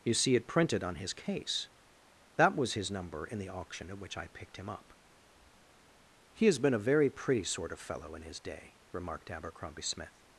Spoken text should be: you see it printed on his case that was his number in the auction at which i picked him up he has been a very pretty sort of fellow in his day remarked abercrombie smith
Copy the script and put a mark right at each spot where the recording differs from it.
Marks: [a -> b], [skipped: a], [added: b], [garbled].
you see it printed on his case that was his number in the auction at which i picked him up he has been a very pretty sort of fellow in his day remarked abercrombie smith